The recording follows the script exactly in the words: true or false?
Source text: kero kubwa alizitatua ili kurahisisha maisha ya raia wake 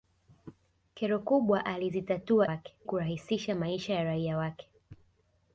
false